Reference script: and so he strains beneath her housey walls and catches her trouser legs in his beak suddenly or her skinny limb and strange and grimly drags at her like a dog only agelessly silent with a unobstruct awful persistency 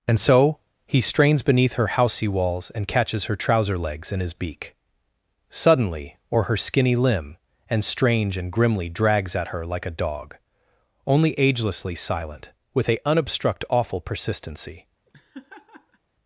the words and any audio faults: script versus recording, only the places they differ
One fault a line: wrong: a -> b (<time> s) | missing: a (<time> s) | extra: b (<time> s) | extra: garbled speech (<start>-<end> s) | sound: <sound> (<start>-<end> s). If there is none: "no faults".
sound: laugh (15.1-16.0 s)